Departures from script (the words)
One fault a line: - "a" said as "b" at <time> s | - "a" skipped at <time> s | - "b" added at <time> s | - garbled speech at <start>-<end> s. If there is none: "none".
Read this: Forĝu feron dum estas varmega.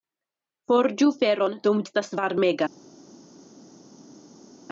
none